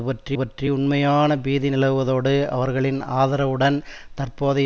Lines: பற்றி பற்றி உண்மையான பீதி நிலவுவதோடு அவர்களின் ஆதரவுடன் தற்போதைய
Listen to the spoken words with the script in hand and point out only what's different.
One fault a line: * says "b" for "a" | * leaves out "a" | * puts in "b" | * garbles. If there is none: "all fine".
all fine